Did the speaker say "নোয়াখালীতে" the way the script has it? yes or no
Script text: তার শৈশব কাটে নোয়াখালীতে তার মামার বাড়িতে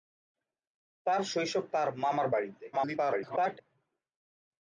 no